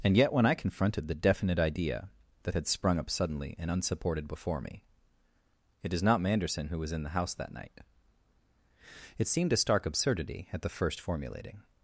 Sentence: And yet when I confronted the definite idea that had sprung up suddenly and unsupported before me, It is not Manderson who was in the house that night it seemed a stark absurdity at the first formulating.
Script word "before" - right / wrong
right